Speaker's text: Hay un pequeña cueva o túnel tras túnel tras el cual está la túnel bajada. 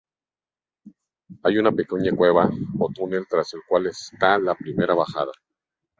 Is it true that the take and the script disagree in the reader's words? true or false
true